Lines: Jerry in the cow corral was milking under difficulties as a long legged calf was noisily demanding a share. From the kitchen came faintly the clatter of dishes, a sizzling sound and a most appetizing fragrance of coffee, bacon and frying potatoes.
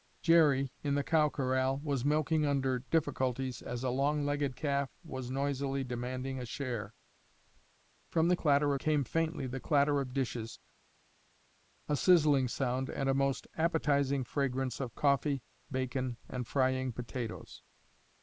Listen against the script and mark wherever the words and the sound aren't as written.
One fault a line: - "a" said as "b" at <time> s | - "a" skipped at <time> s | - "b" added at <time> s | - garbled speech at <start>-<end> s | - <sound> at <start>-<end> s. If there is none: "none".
- "kitchen" said as "clatter" at 8.4 s